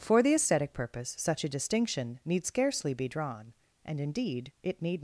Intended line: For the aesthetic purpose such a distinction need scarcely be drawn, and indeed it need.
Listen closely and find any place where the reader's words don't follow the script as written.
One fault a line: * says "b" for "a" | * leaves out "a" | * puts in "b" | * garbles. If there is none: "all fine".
all fine